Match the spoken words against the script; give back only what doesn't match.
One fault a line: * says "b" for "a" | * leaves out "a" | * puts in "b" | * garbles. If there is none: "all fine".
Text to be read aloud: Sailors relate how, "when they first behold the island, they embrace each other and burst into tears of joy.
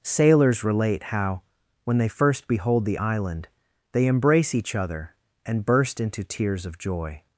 all fine